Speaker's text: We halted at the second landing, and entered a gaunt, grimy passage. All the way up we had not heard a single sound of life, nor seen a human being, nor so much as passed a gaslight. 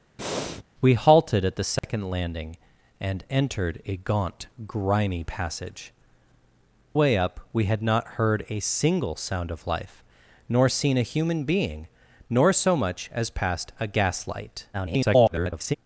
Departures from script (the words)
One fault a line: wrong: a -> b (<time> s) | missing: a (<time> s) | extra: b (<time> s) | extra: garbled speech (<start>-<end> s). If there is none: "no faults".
missing: All the (5.9 s)
extra: garbled speech (14.7-15.8 s)